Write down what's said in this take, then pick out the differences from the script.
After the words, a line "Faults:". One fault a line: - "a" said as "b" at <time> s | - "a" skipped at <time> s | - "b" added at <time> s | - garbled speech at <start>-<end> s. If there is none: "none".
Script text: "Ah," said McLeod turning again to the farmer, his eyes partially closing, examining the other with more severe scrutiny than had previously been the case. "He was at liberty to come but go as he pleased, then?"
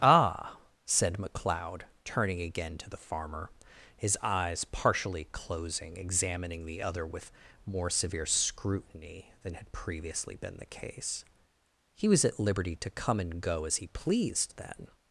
"Ah," said McLeod turning again to the farmer, his eyes partially closing, examining the other with more severe scrutiny than had previously been the case. "He was at liberty to come and go as he pleased, then?"
Faults:
- "but" said as "and" at 13.2 s